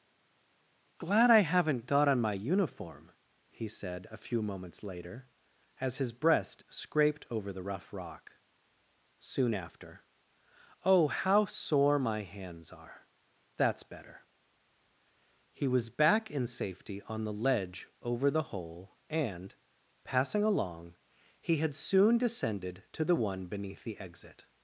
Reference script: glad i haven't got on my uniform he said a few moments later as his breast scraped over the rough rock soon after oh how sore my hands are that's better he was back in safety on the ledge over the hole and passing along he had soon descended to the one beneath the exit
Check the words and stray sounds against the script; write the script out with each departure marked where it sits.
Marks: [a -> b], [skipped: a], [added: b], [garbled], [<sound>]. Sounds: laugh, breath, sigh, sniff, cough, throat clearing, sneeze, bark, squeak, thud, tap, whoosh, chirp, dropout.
glad i haven't got on my uniform he said a few moments later as his breast scraped over the rough rock soon after oh how sore my hands are that's better he was back in safety on the ledge over the hole and passing along he had soon descended to the one beneath the exit